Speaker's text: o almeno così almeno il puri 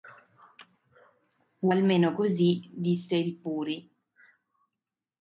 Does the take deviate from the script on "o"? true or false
false